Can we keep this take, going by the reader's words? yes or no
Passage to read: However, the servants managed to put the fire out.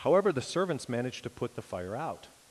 yes